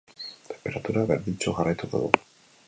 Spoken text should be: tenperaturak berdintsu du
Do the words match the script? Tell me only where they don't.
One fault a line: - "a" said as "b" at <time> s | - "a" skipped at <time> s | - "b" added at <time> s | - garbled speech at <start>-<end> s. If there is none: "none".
- "jarraituko" added at 1.6 s